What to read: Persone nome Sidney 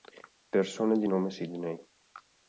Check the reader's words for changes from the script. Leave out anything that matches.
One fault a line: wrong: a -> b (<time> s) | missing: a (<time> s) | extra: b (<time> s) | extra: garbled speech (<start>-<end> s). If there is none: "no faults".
extra: di (1.0 s)